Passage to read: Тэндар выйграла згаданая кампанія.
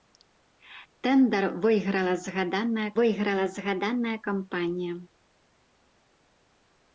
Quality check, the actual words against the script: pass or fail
fail